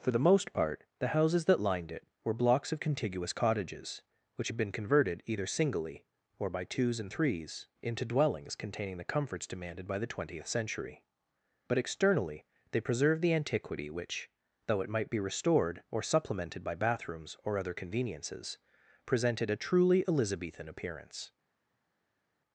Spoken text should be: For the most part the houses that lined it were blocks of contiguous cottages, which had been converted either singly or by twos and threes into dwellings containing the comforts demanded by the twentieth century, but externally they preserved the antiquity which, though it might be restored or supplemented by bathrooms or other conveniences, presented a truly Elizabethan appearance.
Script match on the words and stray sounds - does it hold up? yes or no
yes